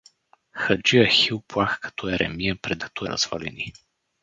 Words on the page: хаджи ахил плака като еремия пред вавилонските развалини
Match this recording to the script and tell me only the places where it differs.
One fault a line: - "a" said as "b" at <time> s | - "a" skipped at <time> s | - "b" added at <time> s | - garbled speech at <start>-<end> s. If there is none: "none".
- "вавилонските" said as "като" at 2.8 s